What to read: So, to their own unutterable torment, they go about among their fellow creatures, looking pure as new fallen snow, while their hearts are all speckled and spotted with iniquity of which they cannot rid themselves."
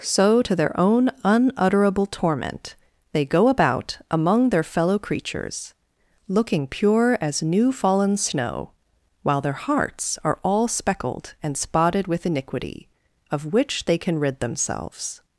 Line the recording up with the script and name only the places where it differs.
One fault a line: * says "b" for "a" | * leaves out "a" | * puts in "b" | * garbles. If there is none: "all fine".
* says "can" for "cannot"